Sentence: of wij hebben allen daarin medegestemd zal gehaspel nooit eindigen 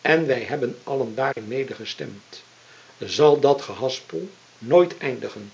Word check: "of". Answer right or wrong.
wrong